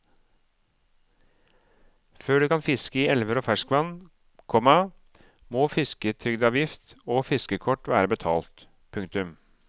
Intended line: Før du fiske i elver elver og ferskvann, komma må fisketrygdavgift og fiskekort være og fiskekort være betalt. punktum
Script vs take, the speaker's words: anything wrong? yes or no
yes